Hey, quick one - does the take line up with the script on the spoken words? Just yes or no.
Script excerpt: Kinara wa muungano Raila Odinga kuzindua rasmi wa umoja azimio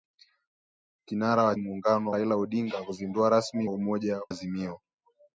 yes